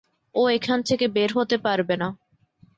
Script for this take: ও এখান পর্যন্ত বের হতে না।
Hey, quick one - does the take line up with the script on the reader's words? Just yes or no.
no